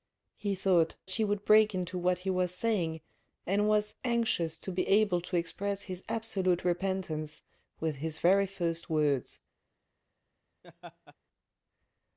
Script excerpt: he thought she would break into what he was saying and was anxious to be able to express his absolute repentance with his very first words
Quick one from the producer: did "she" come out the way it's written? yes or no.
yes